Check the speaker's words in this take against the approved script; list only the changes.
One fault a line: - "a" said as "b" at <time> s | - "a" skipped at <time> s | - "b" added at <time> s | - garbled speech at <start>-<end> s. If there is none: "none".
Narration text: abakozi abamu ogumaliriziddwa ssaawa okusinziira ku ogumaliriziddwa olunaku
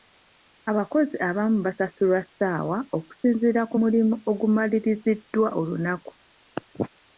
- "ogumaliriziddwa" said as "basasulwa" at 1.6 s
- "mulimu" added at 3.8 s